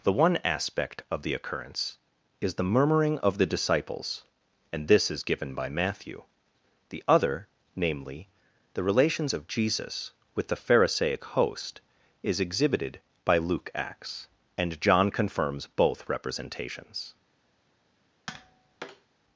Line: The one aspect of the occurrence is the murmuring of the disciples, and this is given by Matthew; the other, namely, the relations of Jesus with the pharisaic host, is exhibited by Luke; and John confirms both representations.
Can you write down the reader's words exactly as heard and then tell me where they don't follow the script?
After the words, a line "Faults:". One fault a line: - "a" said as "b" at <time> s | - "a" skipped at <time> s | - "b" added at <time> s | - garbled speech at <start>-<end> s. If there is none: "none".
The one aspect of the occurrence is the murmuring of the disciples, and this is given by Matthew; the other, namely, the relations of Jesus with the pharisaic host, is exhibited by Luke; acts and John confirms both representations.
Faults:
- "acts" added at 13.8 s